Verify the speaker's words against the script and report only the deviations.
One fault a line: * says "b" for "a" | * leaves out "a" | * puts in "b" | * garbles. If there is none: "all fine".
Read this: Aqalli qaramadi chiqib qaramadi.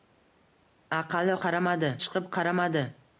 all fine